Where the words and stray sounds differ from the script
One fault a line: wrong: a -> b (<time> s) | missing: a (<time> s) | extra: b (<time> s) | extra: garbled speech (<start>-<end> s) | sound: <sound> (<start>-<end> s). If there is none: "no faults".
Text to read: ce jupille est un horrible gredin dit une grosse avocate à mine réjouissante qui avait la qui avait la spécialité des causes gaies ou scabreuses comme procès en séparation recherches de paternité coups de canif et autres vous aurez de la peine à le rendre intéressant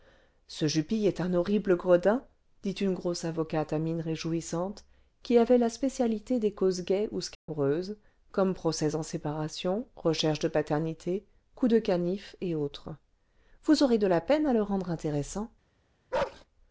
missing: qui avait la (5.7 s)
sound: dropout (7.3-7.5 s)
sound: bark (16.1-16.4 s)